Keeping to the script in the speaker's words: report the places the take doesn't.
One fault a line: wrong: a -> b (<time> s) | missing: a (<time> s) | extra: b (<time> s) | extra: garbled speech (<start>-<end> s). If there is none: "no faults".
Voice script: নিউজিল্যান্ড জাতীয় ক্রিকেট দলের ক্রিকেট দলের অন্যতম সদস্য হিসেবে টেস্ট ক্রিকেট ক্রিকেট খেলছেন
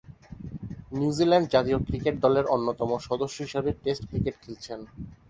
missing: ক্রিকেট দলের (2.5 s)
missing: ক্রিকেট (4.4 s)